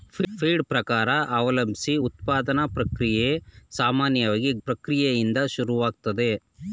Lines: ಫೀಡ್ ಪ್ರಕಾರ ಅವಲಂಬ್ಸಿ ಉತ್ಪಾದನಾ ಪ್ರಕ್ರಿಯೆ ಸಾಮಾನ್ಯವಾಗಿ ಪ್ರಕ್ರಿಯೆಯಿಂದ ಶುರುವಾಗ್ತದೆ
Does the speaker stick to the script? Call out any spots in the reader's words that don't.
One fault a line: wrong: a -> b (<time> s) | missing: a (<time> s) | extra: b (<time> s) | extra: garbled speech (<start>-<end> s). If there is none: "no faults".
no faults